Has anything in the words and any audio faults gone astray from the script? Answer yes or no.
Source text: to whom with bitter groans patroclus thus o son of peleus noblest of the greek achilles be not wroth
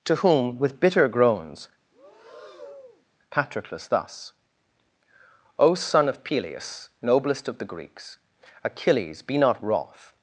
yes